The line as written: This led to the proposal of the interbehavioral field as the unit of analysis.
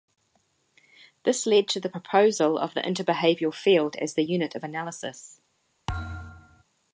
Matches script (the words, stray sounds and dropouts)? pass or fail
fail